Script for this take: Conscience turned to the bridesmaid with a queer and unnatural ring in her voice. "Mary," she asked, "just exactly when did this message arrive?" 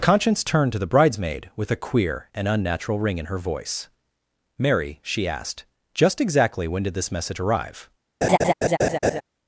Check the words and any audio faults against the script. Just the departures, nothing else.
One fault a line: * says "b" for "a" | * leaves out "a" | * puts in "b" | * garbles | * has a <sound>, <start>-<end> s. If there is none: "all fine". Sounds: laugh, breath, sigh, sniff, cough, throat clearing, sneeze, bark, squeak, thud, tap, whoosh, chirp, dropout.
* has a laugh, 8.2-9.2 s